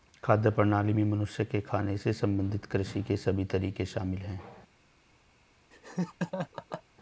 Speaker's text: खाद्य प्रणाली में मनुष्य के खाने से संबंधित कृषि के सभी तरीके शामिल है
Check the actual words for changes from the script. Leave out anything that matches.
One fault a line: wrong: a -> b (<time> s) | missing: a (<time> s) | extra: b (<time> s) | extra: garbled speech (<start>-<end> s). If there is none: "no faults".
no faults